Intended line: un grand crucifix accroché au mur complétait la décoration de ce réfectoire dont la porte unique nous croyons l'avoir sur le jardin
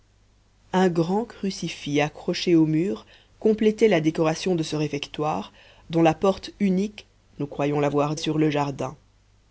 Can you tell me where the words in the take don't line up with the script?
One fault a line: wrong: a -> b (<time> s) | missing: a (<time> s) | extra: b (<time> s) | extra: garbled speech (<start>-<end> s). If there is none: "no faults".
no faults